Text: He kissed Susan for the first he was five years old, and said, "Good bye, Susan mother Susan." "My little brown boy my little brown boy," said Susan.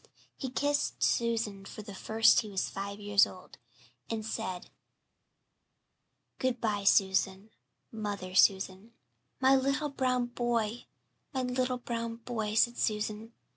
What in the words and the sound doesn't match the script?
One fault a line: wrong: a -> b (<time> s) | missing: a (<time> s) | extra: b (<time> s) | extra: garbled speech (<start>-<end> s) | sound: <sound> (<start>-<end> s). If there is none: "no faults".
no faults